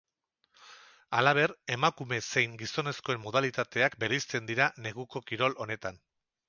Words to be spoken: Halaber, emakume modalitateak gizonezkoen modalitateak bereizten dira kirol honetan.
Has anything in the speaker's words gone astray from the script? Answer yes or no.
yes